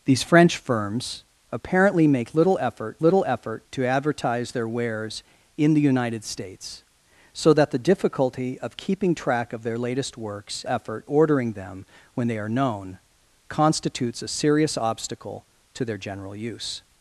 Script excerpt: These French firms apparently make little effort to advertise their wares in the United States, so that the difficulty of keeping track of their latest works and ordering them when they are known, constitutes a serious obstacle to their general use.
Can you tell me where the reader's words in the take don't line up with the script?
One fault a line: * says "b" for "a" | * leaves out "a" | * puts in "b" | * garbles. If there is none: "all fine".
* puts in "little effort"
* says "effort" for "and"